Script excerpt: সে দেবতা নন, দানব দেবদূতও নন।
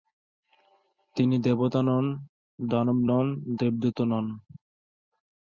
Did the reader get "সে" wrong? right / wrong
wrong